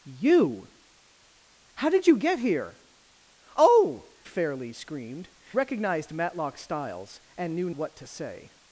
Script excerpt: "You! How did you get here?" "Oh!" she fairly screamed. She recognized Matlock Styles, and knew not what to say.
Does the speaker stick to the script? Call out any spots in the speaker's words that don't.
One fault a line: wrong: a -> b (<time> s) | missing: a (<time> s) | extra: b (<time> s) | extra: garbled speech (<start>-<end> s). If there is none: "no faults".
missing: she (4.1 s)
missing: She (5.3 s)
missing: not (7.7 s)